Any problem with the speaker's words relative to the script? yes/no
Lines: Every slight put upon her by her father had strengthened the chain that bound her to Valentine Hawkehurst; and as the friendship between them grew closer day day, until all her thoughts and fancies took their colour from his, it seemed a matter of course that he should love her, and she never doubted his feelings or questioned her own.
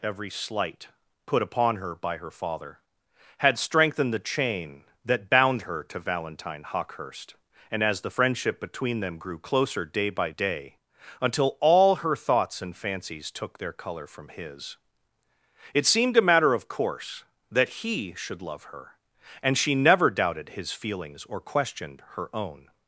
yes